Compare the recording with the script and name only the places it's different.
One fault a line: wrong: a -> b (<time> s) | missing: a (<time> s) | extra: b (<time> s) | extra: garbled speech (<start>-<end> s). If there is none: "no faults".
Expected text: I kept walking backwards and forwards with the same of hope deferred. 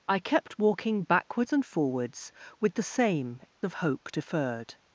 no faults